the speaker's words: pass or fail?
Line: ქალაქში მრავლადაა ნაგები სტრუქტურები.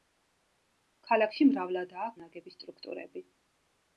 pass